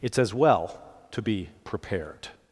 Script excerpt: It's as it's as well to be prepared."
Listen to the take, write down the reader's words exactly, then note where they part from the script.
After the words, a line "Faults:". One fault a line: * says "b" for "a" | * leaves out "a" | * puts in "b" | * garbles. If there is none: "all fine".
It's as well to be prepared."
Faults:
* leaves out "it's as"